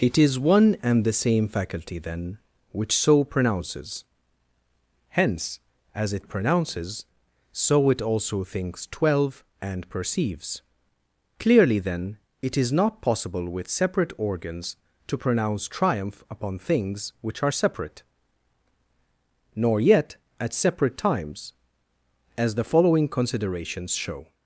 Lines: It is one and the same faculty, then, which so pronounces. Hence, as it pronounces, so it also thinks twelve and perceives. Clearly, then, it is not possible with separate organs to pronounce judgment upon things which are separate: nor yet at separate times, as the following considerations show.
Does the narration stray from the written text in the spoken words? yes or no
yes